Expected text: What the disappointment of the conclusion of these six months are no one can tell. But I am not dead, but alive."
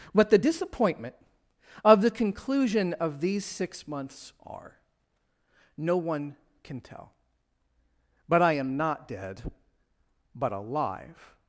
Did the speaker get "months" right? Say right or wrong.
right